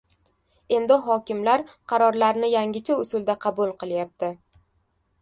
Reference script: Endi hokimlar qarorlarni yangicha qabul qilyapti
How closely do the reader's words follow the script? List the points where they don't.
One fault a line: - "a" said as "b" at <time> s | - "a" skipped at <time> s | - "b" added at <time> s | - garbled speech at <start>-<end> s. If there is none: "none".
- "usulda" added at 3.0 s